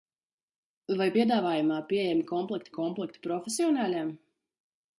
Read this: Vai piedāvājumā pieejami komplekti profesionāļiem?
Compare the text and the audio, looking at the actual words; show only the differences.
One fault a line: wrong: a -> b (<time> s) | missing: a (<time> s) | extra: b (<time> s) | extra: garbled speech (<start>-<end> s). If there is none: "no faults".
extra: komplekti (2.7 s)